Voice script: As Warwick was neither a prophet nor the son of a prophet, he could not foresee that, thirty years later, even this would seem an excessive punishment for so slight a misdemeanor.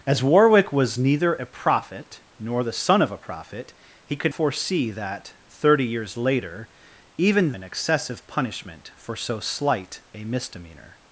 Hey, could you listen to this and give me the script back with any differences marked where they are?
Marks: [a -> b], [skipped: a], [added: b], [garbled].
As Warwick was neither a prophet nor the son of a prophet, he could [skipped: not] foresee that, thirty years later, even [skipped: this would seem] an excessive punishment for so slight a misdemeanor.